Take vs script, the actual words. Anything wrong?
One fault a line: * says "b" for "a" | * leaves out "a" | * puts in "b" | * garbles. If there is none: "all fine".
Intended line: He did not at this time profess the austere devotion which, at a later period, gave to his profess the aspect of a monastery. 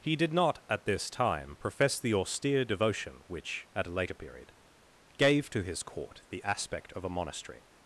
* says "court" for "profess"